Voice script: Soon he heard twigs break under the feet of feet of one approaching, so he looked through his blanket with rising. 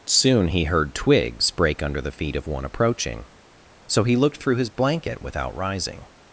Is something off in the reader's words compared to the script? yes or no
yes